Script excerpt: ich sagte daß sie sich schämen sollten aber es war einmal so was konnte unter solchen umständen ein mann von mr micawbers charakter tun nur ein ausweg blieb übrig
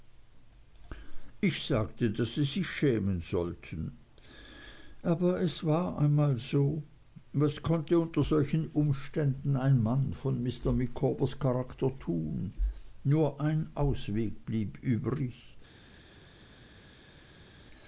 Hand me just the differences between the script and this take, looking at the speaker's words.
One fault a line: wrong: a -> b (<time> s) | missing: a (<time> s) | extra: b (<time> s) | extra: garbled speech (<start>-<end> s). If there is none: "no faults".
no faults